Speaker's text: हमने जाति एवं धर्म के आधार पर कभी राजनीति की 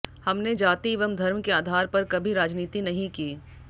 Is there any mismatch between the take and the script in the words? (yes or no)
yes